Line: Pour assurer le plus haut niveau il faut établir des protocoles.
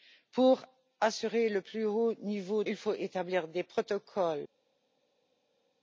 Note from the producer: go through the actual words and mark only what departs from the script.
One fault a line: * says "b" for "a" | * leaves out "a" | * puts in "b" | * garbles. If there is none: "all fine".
all fine